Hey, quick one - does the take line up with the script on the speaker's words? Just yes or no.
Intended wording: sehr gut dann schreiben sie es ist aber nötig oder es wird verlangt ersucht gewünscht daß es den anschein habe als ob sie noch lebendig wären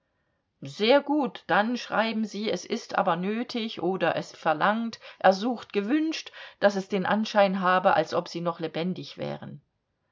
no